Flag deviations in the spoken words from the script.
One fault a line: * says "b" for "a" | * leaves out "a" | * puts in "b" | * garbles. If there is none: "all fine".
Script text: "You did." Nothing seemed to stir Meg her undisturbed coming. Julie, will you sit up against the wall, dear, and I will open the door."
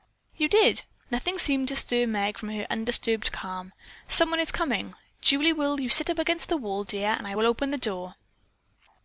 * puts in "from"
* puts in "calm Someone is"